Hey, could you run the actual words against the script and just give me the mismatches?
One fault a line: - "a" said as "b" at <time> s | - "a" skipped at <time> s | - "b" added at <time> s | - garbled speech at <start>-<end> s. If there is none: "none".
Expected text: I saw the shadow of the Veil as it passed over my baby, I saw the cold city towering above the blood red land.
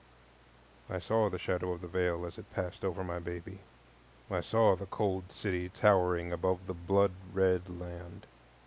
none